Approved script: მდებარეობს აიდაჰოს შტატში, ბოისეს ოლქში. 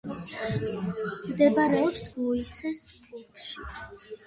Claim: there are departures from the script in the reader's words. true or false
true